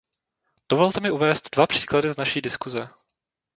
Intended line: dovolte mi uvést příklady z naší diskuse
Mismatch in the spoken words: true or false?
true